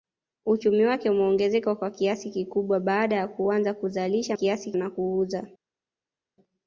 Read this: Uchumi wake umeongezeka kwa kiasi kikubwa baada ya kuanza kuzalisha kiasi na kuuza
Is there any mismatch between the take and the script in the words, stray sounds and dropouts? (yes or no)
no